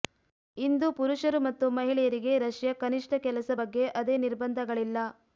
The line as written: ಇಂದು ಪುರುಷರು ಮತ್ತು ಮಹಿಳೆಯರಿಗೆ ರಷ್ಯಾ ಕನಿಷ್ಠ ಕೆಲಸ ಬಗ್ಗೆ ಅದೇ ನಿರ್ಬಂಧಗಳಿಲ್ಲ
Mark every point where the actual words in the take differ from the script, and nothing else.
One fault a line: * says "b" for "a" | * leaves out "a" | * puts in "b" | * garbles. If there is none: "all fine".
all fine